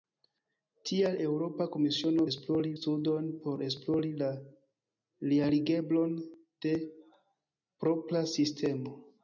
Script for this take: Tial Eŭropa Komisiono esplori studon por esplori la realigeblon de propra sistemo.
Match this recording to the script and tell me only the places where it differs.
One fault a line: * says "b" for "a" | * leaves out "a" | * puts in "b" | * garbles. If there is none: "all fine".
all fine